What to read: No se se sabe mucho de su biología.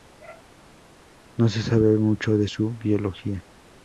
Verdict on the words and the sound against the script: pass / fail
fail